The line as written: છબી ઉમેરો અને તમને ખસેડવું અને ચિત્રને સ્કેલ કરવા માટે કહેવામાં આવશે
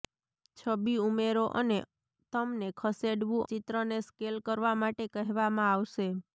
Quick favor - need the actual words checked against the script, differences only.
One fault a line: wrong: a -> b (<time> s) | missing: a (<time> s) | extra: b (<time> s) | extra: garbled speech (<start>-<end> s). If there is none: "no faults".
missing: અને (3.5 s)